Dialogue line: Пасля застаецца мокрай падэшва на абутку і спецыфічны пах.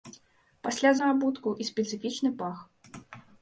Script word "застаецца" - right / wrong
wrong